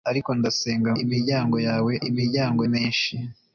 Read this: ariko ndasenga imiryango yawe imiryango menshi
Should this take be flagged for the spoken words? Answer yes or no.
no